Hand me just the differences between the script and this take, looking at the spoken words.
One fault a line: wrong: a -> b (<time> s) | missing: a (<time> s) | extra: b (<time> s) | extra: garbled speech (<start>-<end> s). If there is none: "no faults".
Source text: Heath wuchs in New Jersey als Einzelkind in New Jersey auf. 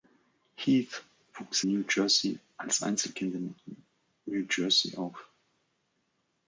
missing: in (1.6 s)